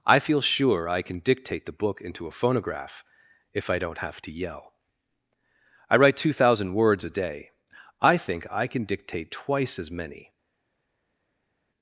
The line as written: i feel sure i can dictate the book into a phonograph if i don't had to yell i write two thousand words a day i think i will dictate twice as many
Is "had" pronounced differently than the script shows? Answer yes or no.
yes